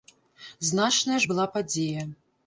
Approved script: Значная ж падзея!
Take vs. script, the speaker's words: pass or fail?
fail